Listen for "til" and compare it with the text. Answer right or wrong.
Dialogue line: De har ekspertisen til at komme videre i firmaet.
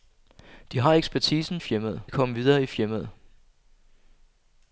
wrong